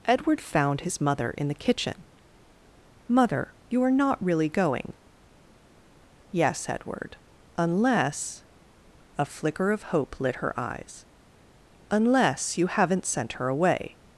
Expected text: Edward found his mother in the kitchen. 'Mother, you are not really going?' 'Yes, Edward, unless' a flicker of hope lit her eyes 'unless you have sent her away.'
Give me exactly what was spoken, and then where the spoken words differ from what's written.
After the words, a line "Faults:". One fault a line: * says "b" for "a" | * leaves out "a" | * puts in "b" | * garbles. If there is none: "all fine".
Edward found his mother in the kitchen. 'Mother, you are not really going?' 'Yes, Edward, unless' a flicker of hope lit her eyes 'unless you haven't sent her away.'
Faults:
* says "haven't" for "have"